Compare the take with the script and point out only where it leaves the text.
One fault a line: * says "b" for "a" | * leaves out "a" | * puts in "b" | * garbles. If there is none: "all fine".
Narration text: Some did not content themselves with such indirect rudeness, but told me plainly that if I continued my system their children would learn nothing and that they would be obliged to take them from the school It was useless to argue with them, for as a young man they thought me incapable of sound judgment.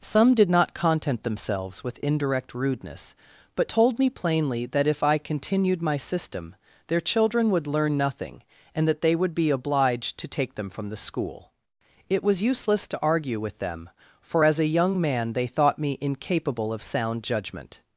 * leaves out "such"